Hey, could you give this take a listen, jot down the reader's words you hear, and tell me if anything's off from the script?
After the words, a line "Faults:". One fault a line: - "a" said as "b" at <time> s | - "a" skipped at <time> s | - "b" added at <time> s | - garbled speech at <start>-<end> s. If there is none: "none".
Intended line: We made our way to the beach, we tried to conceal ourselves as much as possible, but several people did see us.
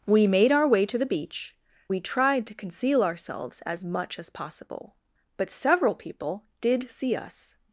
We made our way to the beach, we tried to conceal ourselves as much as possible, but several people did see us.
Faults:
none